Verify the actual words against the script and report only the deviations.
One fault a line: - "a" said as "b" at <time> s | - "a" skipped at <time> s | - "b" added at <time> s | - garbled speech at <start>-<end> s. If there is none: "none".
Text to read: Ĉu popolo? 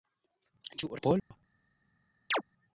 none